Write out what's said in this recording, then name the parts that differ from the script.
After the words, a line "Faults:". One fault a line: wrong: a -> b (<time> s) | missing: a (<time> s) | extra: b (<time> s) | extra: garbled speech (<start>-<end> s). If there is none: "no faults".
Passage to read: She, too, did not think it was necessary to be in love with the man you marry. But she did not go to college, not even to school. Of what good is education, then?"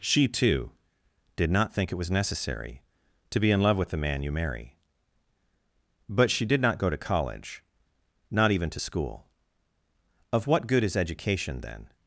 She, too, did not think it was necessary to be in love with the man you marry. But she did not go to college, not even to school. Of what good is education, then?"
Faults:
no faults